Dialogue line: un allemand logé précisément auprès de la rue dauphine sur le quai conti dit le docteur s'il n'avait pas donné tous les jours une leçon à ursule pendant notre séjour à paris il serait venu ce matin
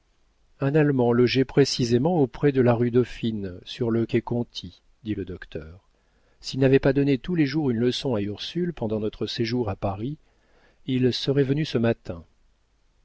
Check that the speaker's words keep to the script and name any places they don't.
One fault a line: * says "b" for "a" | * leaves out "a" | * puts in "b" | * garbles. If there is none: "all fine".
all fine